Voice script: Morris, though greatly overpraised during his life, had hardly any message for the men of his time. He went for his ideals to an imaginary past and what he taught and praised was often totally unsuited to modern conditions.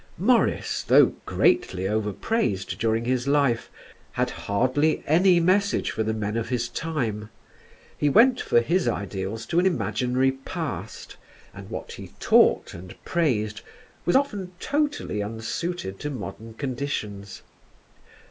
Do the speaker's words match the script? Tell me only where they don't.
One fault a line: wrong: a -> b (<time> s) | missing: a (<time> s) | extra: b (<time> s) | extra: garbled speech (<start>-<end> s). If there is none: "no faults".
no faults